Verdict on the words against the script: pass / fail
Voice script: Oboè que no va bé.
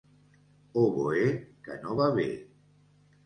pass